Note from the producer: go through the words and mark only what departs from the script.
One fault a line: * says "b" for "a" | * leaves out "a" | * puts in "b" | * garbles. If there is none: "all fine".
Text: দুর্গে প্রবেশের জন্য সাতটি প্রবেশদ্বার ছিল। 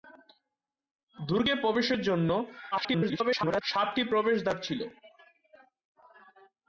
* garbles